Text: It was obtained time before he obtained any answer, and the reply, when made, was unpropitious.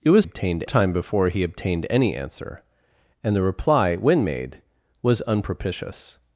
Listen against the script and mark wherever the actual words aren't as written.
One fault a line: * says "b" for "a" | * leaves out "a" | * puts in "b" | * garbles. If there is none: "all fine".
all fine